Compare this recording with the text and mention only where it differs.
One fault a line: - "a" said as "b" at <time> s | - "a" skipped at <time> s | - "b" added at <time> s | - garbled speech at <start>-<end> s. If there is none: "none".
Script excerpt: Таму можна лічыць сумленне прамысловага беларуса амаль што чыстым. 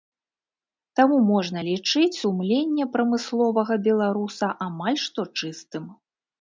none